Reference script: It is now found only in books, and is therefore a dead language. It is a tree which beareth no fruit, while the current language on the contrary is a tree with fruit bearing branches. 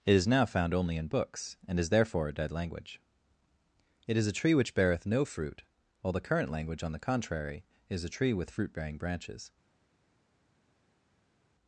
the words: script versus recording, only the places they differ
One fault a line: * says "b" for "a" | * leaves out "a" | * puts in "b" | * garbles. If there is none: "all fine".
all fine